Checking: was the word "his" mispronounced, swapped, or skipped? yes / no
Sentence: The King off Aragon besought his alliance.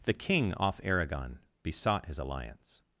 no